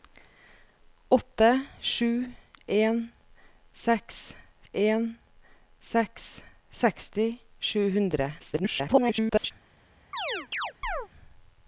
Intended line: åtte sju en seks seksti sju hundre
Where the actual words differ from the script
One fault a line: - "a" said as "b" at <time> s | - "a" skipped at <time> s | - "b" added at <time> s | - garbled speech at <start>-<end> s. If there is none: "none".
- "en seks" added at 4.7 s
- garbled speech at 8.4-9.5 s